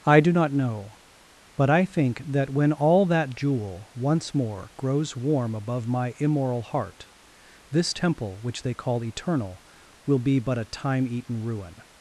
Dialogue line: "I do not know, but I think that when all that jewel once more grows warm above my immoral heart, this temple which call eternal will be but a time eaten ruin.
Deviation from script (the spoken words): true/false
true